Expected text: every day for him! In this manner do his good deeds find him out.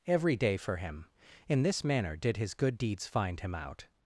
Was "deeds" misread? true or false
false